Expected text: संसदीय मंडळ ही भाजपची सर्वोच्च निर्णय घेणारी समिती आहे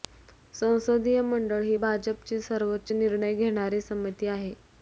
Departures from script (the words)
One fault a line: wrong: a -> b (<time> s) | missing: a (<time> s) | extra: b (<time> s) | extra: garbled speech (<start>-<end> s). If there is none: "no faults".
no faults